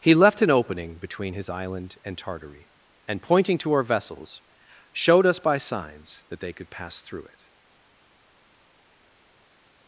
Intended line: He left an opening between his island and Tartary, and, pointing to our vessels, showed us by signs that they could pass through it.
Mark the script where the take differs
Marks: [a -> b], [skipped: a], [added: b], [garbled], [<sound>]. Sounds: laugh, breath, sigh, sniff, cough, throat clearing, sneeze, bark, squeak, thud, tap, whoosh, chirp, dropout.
He left an opening between his island and Tartary, and, pointing to our vessels, showed us by signs that they could pass through it.